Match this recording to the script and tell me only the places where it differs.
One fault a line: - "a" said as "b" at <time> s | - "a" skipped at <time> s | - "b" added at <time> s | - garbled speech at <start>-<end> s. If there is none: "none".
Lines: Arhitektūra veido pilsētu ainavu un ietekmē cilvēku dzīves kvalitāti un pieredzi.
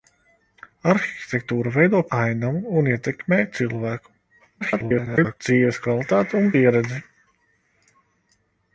- "pilsētu" skipped at 2.0 s
- garbled speech at 4.6-5.4 s